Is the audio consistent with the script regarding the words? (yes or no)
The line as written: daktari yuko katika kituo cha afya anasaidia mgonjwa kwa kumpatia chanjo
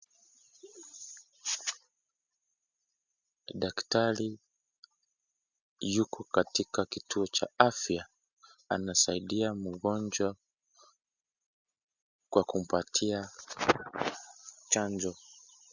yes